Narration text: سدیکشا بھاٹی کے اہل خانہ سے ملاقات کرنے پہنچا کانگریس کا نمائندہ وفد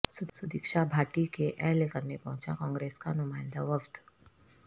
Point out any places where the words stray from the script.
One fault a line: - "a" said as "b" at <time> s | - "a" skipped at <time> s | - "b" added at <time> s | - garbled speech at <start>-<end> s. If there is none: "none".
- "خانہ سے ملاقات" skipped at 1.9 s